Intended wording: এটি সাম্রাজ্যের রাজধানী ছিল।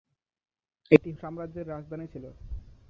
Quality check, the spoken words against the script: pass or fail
pass